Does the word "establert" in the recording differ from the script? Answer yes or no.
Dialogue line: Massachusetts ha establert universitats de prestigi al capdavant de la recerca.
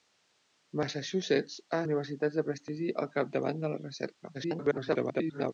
yes